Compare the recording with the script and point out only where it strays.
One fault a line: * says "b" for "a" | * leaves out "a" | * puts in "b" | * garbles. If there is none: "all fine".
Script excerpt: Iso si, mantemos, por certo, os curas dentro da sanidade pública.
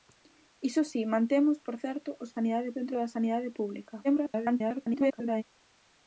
* says "sanidade" for "curas"
* garbles